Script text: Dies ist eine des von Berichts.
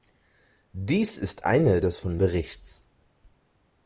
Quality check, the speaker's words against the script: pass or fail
pass